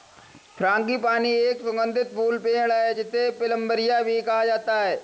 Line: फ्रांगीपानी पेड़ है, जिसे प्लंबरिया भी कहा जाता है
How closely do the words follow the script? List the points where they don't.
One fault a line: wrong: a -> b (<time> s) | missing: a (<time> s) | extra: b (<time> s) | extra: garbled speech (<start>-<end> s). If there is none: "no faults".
extra: एक सुगंधित फूल (1.4 s)